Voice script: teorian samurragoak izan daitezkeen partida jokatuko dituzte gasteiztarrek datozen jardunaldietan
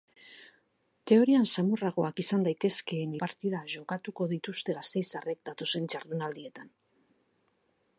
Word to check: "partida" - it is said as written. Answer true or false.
true